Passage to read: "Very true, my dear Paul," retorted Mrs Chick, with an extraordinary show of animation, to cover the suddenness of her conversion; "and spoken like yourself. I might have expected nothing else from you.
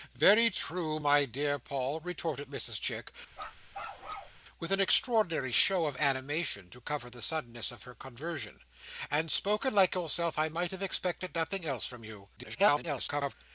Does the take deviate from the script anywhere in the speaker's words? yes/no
yes